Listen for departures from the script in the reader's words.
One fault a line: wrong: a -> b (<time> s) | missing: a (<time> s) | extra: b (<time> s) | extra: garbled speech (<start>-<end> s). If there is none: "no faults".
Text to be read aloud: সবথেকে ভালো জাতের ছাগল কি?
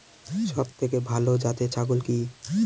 no faults